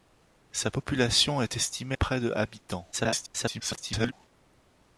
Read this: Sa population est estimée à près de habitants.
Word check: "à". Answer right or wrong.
wrong